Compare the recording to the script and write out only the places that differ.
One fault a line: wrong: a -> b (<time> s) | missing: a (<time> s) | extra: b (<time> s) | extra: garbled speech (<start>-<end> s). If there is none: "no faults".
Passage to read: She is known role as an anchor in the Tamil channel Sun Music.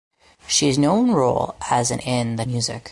missing: anchor (2.0 s)
missing: Tamil channel Sun (2.4 s)